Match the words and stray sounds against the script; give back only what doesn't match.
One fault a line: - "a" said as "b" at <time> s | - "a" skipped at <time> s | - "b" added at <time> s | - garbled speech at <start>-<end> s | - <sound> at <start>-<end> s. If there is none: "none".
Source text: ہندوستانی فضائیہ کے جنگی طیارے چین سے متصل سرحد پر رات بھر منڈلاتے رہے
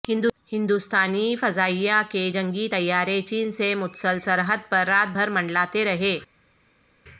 none